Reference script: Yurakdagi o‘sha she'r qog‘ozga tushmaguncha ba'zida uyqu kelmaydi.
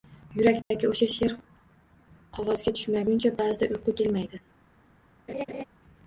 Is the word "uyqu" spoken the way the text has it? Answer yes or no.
yes